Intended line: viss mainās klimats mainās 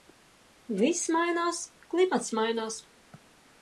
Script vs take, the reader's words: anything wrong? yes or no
no